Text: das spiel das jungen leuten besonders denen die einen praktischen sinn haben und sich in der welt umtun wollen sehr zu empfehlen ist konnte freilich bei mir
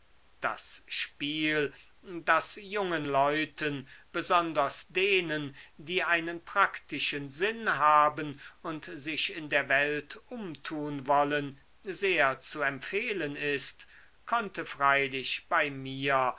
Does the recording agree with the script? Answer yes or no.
yes